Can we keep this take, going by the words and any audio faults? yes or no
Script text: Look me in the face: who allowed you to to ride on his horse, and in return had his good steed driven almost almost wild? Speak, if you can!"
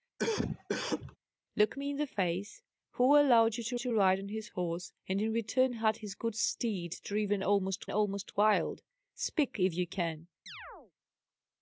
no